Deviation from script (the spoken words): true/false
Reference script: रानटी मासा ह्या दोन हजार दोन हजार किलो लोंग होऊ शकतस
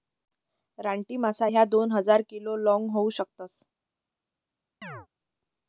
true